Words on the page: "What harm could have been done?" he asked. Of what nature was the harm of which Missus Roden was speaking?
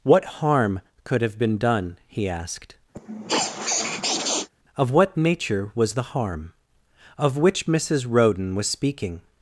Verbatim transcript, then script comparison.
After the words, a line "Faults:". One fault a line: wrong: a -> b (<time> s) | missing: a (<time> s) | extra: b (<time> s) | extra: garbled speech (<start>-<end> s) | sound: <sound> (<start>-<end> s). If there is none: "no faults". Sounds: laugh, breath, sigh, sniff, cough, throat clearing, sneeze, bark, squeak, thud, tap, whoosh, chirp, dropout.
"What harm could have been done?" he asked. Of what nature was the harm of which Missus Roden was speaking?
Faults:
sound: sniff (2.9-4.5 s)